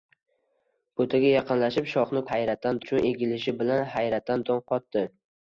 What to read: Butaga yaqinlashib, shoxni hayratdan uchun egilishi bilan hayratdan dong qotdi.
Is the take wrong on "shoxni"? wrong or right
right